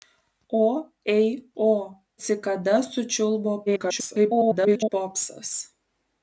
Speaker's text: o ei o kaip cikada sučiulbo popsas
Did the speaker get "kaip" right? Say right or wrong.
wrong